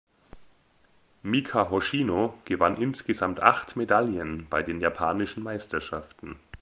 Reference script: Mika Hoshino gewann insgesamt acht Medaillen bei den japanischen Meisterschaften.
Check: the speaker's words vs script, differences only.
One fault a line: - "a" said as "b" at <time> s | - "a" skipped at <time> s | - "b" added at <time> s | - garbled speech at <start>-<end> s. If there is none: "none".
none